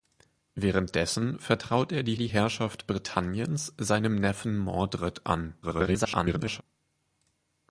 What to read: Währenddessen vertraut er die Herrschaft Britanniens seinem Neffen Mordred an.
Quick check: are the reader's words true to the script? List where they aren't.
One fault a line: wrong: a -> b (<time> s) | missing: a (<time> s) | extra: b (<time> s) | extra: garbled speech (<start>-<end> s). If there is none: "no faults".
extra: die (2.1 s)
extra: garbled speech (5.6-6.6 s)